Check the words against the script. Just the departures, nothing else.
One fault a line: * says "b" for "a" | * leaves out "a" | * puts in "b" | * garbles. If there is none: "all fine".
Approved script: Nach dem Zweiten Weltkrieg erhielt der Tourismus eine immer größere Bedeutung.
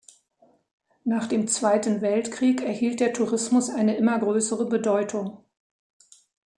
all fine